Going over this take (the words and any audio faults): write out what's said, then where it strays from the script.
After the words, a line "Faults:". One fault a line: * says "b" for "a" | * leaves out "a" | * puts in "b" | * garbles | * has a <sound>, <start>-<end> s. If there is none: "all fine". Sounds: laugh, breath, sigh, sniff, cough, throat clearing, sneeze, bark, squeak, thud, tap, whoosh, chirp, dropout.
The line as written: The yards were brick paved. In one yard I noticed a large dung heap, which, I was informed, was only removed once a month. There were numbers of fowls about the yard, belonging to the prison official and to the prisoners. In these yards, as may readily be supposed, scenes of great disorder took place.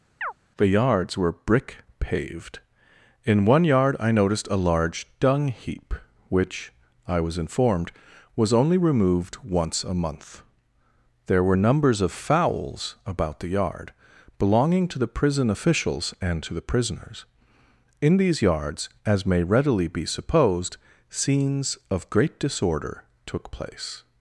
The yards were brick paved. In one yard I noticed a large dung heap, which, I was informed, was only removed once a month. There were numbers of fowls about the yard, belonging to the prison officials and to the prisoners. In these yards, as may readily be supposed, scenes of great disorder took place.
Faults:
* has a chirp, 0.2-0.3 s
* says "officials" for "official"